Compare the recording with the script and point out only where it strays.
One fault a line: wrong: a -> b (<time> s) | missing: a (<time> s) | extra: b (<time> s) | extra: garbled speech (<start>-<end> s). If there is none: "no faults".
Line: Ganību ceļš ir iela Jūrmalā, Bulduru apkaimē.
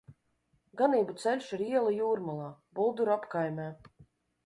no faults